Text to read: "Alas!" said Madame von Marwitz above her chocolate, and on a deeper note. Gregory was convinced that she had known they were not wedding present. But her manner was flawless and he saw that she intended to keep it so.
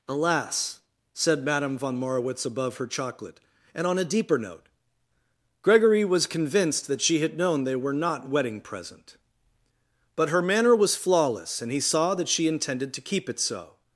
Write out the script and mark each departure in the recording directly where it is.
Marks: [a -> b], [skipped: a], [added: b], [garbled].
"Alas!" said Madame von Marwitz above her chocolate, and on a deeper note. Gregory was convinced that she had known they were not wedding present. But her manner was flawless and he saw that she intended to keep it so.